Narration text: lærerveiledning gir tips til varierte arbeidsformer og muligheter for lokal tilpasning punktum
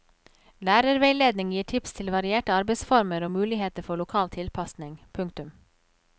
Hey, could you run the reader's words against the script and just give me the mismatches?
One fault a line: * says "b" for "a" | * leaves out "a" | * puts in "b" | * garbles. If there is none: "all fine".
all fine